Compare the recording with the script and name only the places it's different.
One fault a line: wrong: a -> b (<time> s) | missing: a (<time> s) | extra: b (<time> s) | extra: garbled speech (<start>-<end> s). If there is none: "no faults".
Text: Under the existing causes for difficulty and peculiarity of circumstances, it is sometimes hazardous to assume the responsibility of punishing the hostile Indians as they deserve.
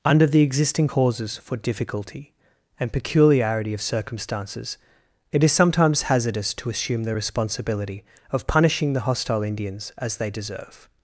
no faults